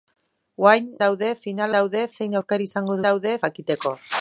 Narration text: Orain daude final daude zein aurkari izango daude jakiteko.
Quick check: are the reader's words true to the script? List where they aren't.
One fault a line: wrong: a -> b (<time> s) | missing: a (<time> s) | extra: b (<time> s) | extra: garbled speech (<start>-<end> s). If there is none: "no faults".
no faults